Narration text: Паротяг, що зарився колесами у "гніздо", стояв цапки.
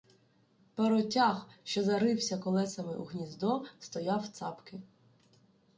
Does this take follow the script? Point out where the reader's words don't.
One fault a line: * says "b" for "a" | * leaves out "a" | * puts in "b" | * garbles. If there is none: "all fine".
all fine